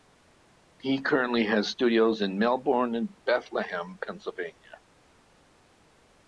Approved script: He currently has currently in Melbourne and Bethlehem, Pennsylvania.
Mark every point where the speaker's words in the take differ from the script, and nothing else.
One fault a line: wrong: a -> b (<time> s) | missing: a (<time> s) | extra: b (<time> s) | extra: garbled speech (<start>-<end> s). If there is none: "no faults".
wrong: currently -> studios (1.7 s)